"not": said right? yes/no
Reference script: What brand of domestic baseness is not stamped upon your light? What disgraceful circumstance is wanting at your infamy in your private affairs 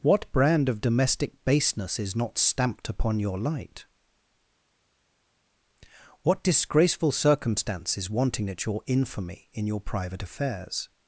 yes